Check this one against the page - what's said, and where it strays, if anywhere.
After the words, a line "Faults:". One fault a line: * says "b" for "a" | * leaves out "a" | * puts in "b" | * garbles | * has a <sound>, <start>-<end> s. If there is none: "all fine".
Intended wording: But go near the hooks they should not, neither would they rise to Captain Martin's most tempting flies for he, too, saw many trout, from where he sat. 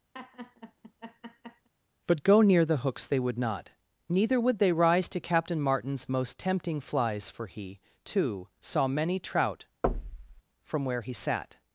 But go near the hooks they would not, neither would they rise to Captain Martin's most tempting flies for he, too, saw many trout, from where he sat.
Faults:
* has a laugh, 0.1-1.7 s
* says "would" for "should"
* has a thud, 9.8-10.4 s